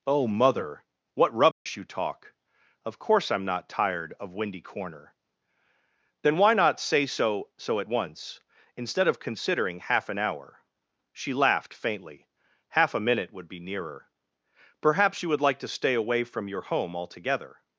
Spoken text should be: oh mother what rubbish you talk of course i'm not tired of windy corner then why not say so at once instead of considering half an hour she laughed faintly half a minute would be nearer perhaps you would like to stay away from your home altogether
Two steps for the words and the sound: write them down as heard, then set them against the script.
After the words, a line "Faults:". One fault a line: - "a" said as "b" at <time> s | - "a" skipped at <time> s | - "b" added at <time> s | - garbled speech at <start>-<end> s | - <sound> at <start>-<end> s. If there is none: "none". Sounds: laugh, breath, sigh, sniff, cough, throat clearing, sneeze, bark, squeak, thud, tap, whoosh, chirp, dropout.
oh mother what rubbish you talk of course i'm not tired of windy corner then why not say so so at once instead of considering half an hour she laughed faintly half a minute would be nearer perhaps you would like to stay away from your home altogether
Faults:
- dropout at 1.5-1.7 s
- "so" added at 7.5 s